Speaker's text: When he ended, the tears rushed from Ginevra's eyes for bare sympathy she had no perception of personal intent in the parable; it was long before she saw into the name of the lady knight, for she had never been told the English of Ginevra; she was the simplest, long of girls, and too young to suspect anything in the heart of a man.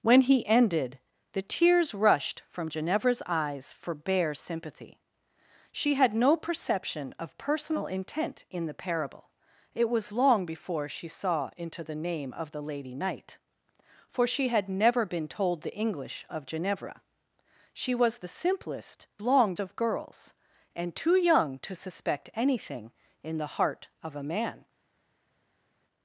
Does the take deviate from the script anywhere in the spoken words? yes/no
no